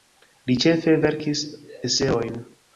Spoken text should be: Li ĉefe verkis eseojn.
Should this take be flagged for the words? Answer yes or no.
no